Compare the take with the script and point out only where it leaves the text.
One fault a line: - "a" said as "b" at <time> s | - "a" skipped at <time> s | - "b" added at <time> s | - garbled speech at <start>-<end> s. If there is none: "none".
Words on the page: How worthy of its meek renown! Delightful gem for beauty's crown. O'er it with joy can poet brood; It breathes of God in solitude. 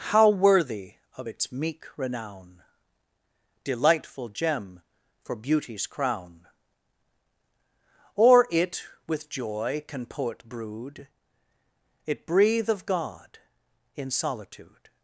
- "breathes" said as "breathe" at 12.3 s